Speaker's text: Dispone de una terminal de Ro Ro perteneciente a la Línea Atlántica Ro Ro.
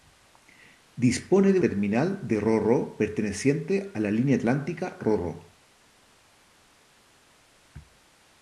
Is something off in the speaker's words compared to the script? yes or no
yes